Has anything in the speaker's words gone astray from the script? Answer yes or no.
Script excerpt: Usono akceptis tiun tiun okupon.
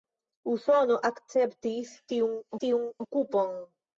no